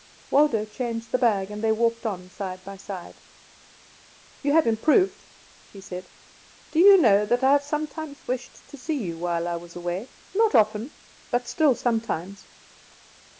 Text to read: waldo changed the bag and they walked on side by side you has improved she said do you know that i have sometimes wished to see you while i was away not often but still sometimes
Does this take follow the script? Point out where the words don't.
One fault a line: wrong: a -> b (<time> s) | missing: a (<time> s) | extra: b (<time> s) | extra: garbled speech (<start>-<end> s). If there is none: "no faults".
wrong: has -> have (4.5 s)